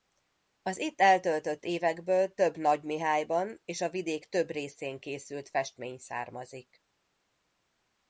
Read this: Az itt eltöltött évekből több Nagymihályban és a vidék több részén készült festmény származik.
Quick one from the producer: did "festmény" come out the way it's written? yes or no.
yes